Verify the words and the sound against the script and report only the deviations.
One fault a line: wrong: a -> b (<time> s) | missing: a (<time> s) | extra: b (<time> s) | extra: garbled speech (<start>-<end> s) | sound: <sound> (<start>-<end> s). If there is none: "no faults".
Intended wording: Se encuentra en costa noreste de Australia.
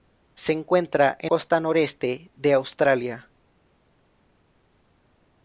no faults